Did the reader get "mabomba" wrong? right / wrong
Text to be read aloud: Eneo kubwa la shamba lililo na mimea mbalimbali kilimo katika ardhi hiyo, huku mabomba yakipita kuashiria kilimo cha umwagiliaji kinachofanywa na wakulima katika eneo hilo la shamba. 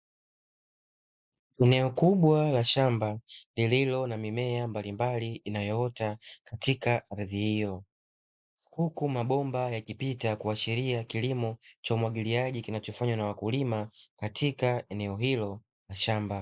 right